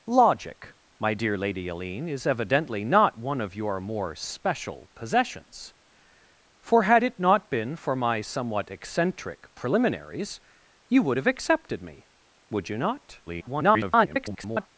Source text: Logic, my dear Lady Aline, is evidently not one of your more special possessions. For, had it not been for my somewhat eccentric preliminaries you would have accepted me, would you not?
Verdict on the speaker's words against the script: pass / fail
fail